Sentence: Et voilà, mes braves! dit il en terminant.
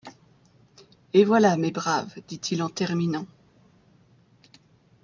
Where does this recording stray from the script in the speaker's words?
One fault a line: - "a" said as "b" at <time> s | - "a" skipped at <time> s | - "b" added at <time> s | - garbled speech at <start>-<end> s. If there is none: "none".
none